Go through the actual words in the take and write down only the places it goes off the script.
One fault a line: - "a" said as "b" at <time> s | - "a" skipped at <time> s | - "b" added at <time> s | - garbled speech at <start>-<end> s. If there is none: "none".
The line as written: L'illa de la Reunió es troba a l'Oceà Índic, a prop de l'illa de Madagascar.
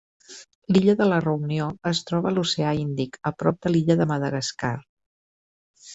none